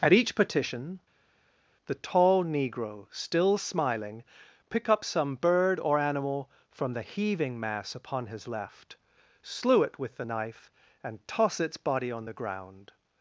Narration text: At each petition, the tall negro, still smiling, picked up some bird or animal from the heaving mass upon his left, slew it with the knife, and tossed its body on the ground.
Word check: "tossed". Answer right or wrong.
wrong